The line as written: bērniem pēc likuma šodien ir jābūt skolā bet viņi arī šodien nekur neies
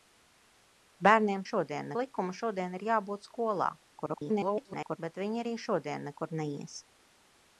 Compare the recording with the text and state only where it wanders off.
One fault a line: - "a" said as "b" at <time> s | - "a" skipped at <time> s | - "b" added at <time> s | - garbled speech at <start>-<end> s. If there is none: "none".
- "pēc" said as "šodien" at 1.5 s
- garbled speech at 3.9-5.0 s